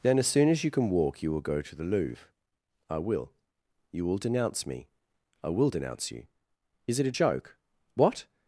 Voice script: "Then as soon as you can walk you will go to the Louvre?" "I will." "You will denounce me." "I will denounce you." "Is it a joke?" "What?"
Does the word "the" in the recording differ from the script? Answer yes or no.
no